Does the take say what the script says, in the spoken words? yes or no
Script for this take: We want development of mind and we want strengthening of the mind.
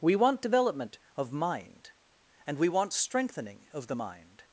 yes